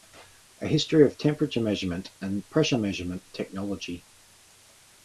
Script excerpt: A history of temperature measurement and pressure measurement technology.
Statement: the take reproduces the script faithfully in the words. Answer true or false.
true